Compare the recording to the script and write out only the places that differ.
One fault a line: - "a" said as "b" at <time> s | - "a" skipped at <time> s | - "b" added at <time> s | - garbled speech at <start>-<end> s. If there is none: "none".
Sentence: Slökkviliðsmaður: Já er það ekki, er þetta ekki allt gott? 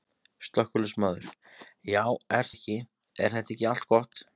- "það" skipped at 2.5 s